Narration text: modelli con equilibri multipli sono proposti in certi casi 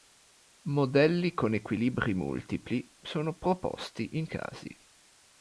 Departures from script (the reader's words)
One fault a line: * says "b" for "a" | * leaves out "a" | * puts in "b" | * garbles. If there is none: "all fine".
* leaves out "certi"